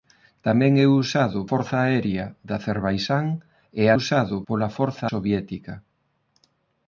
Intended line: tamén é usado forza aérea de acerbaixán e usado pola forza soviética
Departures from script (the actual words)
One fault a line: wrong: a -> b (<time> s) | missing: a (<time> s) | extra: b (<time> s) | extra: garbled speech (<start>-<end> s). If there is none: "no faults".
no faults